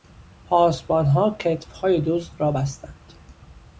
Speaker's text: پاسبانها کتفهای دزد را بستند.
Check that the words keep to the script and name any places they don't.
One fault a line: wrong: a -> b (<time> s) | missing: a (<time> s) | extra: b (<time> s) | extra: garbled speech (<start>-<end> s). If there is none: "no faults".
no faults